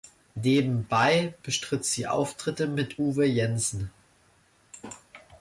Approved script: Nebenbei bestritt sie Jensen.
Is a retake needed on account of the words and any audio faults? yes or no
yes